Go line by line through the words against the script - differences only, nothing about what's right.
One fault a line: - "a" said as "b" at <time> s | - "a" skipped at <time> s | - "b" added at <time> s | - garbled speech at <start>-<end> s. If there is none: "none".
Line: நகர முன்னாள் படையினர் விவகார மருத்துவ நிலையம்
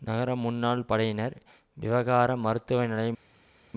none